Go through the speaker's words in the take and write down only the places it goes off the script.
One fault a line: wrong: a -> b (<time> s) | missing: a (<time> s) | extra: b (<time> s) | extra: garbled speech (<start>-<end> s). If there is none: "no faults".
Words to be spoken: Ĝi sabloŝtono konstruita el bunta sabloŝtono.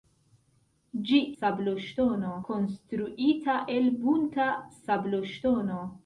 no faults